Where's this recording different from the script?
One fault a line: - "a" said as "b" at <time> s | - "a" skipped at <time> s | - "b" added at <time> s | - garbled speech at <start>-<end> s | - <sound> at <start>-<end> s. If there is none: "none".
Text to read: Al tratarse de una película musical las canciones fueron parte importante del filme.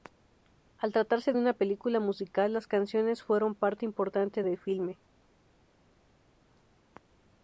none